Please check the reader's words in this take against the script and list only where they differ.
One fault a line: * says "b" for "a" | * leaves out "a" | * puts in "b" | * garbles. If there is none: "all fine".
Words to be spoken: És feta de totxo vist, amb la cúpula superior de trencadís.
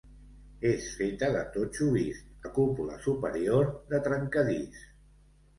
* leaves out "amb"